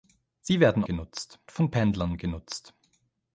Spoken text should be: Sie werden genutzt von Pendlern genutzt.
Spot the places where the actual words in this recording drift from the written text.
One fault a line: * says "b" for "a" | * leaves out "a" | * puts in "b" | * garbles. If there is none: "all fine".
all fine